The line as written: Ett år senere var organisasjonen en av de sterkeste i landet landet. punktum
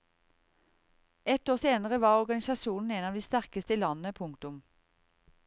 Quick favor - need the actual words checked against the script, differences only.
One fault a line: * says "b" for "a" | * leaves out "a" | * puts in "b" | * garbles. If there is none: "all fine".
* leaves out "landet"